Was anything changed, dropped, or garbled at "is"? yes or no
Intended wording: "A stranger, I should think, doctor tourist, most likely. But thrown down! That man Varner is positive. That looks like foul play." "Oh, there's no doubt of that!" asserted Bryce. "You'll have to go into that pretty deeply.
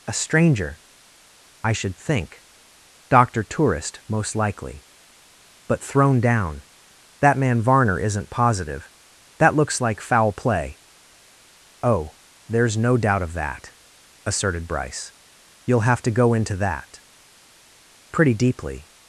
yes